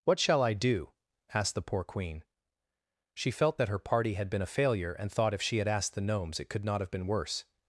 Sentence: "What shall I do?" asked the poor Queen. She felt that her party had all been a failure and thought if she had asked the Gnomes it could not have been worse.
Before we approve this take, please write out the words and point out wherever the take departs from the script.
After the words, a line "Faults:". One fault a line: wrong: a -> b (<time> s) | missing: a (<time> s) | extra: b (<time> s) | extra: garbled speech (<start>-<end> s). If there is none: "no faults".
"What shall I do?" asked the poor Queen. She felt that her party had been a failure and thought if she had asked the Gnomes it could not have been worse.
Faults:
missing: all (4.3 s)